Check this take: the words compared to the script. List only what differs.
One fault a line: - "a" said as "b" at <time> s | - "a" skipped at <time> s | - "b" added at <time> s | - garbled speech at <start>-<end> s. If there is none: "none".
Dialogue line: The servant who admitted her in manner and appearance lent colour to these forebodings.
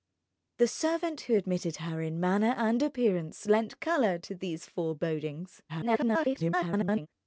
- garbled speech at 5.7-7.1 s